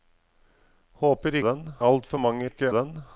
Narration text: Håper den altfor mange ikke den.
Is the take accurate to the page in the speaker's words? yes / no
yes